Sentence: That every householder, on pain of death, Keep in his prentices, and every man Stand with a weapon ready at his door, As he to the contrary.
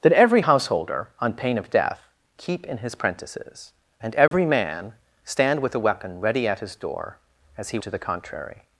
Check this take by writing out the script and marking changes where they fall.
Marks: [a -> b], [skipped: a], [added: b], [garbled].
That every householder, on pain of death, Keep in his prentices, and every man Stand with a weapon ready at his door, As he to the contrary.